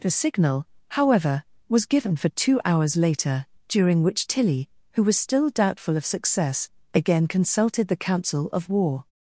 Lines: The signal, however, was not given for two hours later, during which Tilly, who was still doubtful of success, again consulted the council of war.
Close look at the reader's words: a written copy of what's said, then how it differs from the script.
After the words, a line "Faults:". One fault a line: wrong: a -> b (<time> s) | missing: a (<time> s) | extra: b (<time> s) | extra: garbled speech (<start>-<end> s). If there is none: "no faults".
The signal, however, was given for two hours later, during which Tilly, who was still doubtful of success, again consulted the council of war.
Faults:
missing: not (1.9 s)